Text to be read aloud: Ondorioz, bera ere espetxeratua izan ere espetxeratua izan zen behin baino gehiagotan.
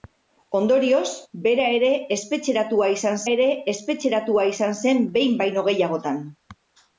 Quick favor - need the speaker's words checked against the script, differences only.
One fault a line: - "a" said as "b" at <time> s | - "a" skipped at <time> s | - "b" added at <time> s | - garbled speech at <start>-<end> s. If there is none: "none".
none